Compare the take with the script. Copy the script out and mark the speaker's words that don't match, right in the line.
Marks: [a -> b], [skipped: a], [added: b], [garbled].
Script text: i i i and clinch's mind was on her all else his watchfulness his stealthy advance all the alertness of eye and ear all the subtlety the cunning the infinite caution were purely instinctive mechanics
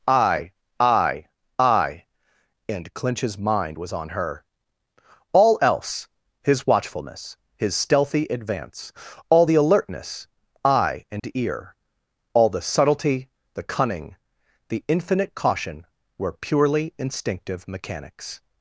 i i i and clinch's mind was on her all else his watchfulness his stealthy advance all the alertness [skipped: of] eye and ear all the subtlety the cunning the infinite caution were purely instinctive mechanics